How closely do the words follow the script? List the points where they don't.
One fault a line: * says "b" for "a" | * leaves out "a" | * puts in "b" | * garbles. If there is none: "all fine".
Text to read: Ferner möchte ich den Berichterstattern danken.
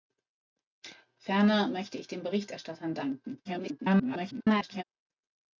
* garbles